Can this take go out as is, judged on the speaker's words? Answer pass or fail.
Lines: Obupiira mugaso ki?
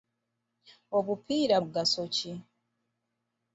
pass